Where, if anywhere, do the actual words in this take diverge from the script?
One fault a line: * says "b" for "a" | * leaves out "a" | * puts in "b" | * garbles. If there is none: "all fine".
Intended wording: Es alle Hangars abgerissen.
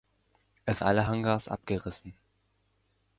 all fine